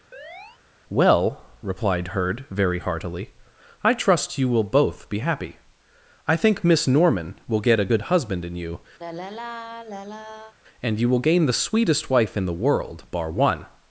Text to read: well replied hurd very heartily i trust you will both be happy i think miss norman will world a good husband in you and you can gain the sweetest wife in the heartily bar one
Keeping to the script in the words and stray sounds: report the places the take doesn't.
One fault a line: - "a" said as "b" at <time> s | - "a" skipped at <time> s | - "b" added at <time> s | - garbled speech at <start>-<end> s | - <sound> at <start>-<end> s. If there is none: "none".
- chirp at 0.1-0.6 s
- "world" said as "get" at 7.6 s
- sigh at 9.0-10.5 s
- "can" said as "will" at 11.1 s
- "heartily" said as "world" at 12.6 s